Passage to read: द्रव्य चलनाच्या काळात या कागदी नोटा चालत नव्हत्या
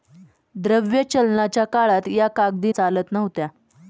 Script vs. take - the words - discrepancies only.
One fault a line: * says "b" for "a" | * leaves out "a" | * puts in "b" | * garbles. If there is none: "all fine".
* leaves out "नोटा"